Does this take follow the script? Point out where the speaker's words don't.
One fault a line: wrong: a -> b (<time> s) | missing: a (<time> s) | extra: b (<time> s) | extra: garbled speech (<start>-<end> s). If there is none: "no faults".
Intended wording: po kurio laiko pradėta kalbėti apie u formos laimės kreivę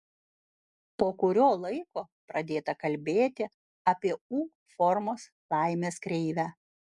no faults